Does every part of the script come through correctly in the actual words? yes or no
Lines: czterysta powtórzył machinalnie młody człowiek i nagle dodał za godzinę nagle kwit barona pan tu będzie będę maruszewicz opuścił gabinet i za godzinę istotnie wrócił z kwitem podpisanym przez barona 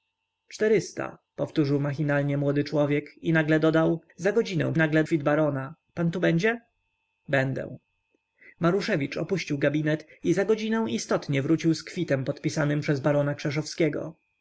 yes